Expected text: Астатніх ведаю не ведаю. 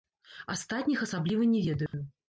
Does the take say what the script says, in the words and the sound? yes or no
no